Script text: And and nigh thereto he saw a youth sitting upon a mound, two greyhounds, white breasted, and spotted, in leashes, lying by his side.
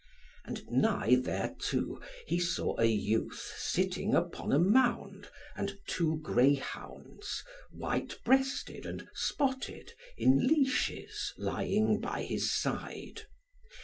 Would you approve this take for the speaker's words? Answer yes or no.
no